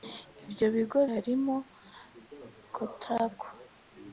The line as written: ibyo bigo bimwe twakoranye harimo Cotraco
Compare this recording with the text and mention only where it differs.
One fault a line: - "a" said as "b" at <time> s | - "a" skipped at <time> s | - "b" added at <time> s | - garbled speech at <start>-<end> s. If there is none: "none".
- "bimwe twakoranye" skipped at 1.0 s